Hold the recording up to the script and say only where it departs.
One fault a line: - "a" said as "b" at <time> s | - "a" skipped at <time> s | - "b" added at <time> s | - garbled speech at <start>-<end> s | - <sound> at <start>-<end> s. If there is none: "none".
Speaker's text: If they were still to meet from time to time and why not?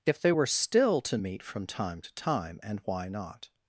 none